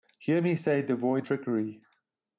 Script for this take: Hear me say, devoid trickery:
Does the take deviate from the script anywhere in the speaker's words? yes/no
no